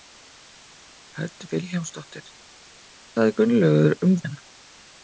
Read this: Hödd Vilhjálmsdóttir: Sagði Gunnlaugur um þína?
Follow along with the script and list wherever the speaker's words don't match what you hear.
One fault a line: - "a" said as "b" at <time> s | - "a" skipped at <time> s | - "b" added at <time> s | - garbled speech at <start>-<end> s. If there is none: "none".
none